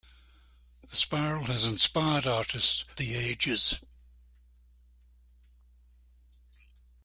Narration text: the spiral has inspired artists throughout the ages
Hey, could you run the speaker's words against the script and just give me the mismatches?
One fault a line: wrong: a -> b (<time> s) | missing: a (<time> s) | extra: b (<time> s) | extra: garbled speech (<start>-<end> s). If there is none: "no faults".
missing: throughout (2.9 s)